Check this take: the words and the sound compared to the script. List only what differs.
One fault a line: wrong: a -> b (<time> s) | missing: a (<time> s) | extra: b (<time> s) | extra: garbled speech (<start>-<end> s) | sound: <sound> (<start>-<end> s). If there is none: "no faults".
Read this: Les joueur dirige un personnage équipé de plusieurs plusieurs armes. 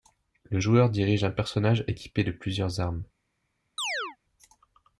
wrong: Les -> Le (0.5 s)
missing: plusieurs (2.8 s)
sound: chirp (3.8-4.2 s)